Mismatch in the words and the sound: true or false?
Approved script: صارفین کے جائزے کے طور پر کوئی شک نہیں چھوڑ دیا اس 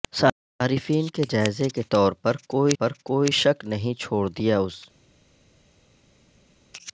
true